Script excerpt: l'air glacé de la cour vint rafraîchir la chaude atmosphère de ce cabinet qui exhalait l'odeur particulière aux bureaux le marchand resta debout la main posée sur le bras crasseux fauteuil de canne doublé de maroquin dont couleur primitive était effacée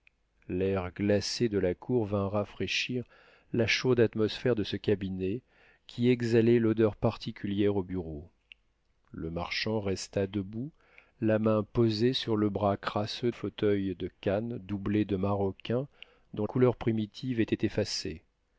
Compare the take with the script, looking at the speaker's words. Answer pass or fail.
pass